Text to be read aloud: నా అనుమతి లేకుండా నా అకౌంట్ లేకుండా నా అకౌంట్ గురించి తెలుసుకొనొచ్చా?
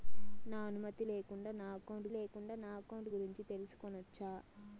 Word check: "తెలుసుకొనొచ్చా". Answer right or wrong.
right